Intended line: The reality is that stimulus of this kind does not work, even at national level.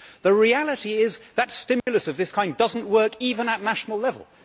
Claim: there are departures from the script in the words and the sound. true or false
true